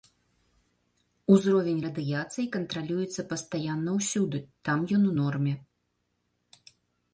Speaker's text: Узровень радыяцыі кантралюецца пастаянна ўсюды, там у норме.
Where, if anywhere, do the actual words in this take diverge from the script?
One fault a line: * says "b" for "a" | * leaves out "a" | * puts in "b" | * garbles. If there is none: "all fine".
* puts in "ён"